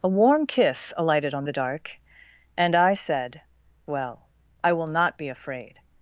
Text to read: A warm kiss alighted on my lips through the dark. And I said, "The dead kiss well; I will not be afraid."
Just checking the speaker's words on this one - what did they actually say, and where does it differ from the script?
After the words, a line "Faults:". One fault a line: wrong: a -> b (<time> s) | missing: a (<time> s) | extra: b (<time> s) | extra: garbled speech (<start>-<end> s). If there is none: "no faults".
A warm kiss alighted on the dark. And I said, "Well; I will not be afraid."
Faults:
missing: my lips through (1.4 s)
missing: The dead kiss (3.4 s)